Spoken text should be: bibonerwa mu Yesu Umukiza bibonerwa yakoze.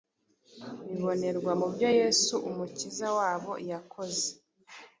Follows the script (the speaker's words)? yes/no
no